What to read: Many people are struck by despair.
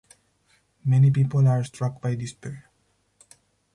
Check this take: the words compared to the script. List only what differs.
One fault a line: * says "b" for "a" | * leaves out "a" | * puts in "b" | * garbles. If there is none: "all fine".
all fine